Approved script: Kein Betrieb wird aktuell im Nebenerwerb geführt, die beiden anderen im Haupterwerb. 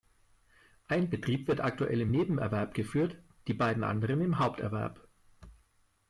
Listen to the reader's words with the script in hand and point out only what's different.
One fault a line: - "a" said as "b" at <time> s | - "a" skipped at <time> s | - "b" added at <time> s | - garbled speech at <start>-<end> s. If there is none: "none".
- "Kein" said as "Ein" at 0.9 s